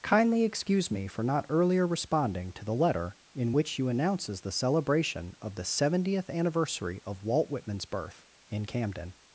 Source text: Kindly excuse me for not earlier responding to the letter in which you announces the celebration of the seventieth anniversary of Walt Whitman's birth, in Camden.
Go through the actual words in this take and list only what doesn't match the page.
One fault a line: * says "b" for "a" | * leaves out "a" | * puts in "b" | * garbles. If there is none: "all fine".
all fine